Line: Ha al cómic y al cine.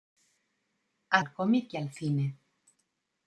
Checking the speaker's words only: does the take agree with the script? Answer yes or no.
yes